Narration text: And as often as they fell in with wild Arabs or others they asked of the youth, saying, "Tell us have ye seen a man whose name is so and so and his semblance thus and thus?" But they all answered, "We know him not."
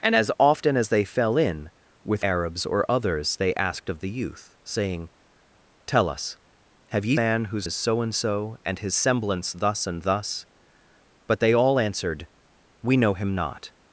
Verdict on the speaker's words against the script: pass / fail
fail